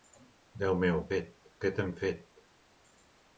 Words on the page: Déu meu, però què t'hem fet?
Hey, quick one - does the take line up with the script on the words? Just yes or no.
no